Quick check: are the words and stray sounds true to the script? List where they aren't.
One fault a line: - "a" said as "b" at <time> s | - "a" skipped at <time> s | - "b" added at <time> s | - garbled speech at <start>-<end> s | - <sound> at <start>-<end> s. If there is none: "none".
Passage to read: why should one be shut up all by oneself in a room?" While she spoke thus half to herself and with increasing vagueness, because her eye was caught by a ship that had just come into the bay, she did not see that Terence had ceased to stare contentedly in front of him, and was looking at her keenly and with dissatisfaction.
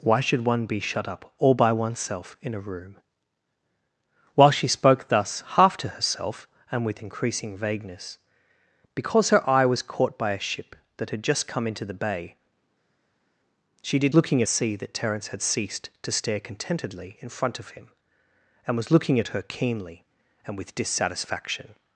- "not" said as "looking" at 14.1 s